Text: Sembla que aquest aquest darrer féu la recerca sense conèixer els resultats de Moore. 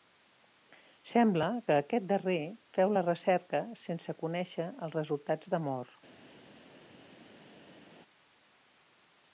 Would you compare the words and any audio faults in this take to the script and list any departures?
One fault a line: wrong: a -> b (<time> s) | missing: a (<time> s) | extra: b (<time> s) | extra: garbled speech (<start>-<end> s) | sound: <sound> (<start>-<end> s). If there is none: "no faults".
missing: aquest (2.1 s)